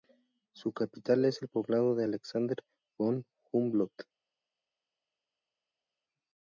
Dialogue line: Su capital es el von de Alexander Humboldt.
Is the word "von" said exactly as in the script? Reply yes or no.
no